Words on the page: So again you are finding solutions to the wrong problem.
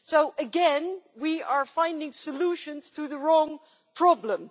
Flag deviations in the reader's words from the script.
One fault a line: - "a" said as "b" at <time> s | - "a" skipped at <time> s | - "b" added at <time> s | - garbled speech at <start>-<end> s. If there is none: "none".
- "you" said as "we" at 1.2 s